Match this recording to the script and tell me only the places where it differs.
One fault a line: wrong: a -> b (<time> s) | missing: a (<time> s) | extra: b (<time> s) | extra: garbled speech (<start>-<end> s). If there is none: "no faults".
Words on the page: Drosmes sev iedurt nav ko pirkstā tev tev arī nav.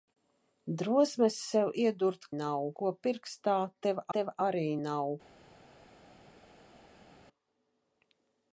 no faults